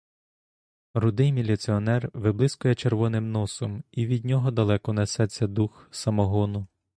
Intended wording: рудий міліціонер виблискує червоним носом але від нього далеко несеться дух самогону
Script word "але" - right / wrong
wrong